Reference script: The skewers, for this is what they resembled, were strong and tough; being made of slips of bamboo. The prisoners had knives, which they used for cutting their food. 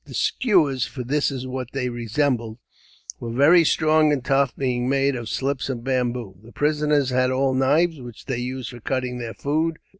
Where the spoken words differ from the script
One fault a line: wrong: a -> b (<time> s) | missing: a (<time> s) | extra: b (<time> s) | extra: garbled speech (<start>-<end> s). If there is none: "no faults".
extra: very (3.3 s)
extra: all (7.3 s)